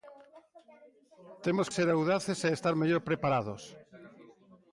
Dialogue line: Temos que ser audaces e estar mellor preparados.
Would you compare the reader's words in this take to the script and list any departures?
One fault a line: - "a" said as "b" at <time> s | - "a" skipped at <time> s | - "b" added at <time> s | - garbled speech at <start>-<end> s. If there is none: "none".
- "que" skipped at 1.7 s